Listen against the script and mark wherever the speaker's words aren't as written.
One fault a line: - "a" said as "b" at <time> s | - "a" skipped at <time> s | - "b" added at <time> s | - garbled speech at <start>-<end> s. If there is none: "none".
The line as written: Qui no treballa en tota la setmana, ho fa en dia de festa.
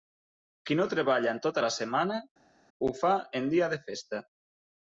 none